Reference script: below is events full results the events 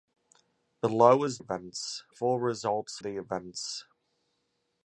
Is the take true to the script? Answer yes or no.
yes